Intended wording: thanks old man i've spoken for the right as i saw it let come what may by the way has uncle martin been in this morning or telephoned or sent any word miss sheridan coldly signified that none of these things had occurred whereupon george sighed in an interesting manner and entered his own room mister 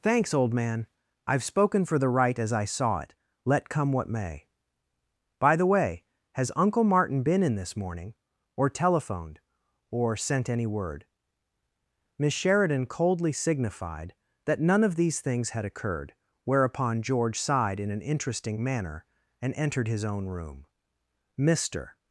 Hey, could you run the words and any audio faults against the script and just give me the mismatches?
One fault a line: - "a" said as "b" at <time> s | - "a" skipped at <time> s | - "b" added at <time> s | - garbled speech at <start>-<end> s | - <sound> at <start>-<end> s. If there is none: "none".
none